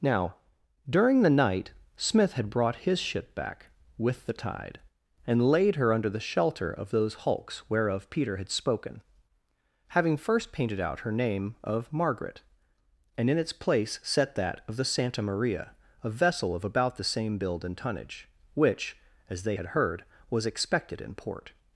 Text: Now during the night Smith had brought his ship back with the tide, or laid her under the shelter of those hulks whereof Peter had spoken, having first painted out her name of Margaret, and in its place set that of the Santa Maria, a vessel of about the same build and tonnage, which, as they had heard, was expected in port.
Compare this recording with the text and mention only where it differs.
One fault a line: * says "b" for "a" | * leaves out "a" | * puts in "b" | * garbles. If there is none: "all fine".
* says "and" for "or"